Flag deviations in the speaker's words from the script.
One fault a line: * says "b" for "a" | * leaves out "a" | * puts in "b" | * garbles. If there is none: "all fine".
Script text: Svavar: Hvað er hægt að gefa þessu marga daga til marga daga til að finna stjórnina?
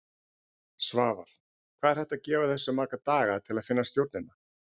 * leaves out "marga daga til"